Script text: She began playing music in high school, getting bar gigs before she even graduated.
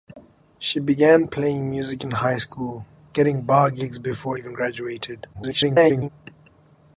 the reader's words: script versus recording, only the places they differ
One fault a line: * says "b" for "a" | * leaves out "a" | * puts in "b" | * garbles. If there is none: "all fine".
* leaves out "she"
* garbles